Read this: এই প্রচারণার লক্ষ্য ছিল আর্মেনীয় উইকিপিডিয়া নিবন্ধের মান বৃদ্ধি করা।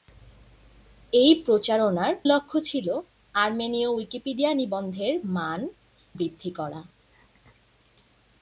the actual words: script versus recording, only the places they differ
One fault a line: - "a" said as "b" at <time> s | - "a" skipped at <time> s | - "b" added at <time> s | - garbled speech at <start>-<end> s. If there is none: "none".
none